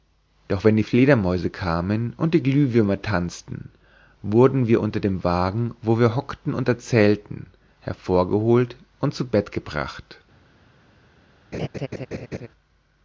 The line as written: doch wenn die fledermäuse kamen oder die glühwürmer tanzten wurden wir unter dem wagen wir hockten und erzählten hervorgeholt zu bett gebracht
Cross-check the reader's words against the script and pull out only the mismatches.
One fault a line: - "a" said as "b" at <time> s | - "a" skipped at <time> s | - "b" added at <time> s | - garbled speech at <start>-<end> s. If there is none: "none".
- "oder" said as "und" at 2.2 s
- "wo" added at 5.8 s
- "und" added at 9.0 s